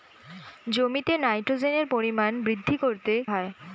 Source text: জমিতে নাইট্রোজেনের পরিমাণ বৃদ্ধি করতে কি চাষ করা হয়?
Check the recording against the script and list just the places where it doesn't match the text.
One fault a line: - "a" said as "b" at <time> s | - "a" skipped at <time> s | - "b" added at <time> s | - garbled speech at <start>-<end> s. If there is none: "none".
- "কি চাষ করা" skipped at 3.1 s